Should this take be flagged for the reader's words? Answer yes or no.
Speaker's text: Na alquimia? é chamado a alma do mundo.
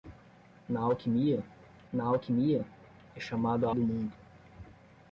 yes